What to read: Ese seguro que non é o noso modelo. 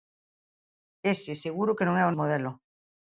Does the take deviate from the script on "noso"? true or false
true